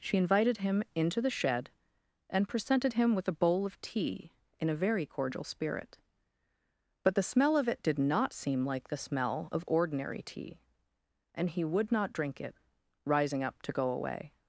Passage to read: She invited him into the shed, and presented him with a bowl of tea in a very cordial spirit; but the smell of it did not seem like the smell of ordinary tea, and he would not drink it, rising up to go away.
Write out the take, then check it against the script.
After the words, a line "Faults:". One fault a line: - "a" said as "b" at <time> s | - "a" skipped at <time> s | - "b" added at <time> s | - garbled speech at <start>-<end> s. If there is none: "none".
She invited him into the shed, and presented him with a bowl of tea in a very cordial spirit; but the smell of it did not seem like the smell of ordinary tea, and he would not drink it, rising up to go away.
Faults:
none